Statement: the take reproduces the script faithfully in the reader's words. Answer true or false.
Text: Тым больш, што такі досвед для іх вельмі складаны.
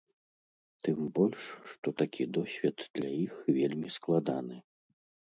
true